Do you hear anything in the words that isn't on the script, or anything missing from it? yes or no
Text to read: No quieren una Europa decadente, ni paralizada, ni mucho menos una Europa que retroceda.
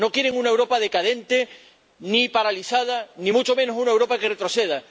no